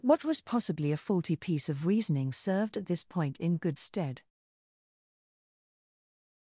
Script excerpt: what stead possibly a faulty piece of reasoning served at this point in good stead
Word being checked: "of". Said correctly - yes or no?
yes